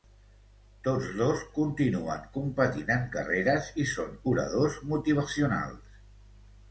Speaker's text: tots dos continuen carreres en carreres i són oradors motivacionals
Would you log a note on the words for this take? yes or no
yes